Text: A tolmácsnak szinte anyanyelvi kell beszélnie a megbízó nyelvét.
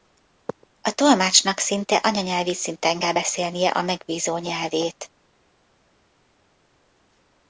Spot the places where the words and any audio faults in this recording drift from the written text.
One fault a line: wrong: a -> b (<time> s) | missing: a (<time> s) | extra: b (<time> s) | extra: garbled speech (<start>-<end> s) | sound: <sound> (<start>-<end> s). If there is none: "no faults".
extra: szinten (2.5 s)